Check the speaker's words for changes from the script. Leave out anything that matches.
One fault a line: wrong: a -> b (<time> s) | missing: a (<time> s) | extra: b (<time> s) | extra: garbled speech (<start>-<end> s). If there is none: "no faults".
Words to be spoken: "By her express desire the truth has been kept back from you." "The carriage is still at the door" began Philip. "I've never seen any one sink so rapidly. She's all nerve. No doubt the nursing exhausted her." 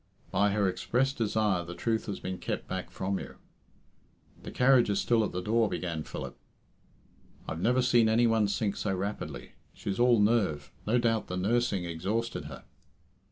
no faults